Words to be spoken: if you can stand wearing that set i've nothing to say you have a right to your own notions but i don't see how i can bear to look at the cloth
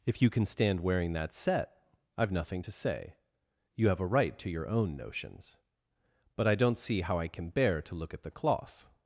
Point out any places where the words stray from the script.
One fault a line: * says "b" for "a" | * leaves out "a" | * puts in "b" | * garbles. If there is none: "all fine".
all fine